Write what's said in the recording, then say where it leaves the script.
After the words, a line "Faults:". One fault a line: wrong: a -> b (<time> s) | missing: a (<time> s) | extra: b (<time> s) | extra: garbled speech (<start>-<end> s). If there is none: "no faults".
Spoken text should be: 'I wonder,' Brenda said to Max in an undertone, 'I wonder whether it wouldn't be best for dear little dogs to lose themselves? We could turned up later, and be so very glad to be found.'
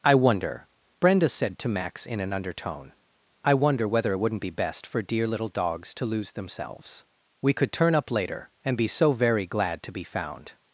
'I wonder,' Brenda said to Max in an undertone, 'I wonder whether it wouldn't be best for dear little dogs to lose themselves? We could turn up later, and be so very glad to be found.'
Faults:
wrong: turned -> turn (7.7 s)